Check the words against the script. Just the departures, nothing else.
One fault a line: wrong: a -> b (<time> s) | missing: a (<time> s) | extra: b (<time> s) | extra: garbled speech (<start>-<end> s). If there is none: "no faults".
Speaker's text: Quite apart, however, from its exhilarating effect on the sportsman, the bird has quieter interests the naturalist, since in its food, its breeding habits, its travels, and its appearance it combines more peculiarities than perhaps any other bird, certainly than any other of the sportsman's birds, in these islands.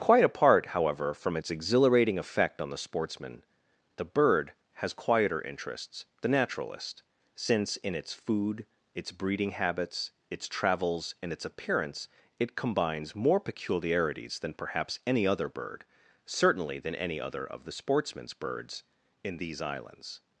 no faults